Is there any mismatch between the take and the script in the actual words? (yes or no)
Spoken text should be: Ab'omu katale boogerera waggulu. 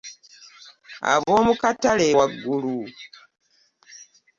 yes